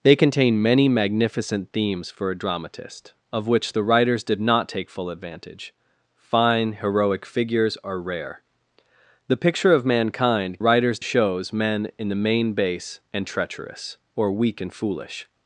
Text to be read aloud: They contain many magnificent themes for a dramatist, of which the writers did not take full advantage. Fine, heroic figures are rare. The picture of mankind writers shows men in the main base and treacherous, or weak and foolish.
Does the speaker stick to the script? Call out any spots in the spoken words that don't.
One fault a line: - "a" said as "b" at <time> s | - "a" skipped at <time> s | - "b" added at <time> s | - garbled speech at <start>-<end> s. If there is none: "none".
none